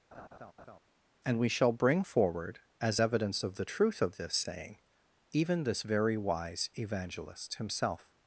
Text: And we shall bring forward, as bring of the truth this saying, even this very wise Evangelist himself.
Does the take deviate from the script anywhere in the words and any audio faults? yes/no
yes